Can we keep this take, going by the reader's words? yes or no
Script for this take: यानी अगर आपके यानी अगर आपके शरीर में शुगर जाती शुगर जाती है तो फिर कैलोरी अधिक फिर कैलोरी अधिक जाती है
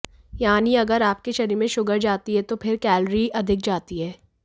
no